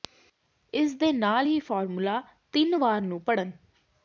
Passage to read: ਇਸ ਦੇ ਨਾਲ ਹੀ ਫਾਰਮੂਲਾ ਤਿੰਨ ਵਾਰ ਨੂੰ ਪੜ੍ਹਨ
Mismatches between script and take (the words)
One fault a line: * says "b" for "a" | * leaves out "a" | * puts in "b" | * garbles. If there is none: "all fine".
all fine